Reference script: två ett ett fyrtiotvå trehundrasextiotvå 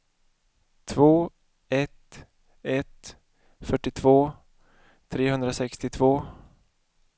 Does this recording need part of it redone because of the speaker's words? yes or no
no